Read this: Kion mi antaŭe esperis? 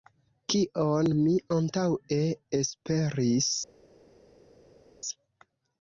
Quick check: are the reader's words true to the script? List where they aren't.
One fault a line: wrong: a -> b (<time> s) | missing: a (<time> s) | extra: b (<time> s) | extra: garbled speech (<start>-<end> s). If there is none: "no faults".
no faults